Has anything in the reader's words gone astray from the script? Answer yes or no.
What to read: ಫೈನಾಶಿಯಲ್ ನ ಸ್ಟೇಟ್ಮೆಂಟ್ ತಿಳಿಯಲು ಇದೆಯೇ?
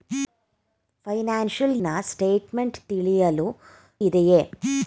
no